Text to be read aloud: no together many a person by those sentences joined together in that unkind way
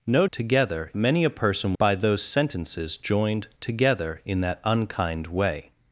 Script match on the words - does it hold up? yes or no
yes